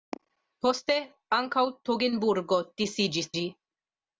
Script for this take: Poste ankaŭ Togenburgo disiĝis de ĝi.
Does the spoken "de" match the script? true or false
false